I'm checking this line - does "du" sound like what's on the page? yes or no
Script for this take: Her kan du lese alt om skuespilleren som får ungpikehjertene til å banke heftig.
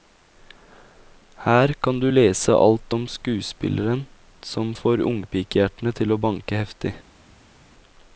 yes